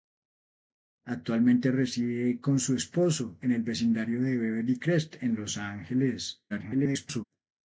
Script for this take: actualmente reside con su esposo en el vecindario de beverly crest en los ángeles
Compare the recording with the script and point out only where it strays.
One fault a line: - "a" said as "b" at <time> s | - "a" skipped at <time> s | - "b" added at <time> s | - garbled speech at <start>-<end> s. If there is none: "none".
- garbled speech at 6.5-7.2 s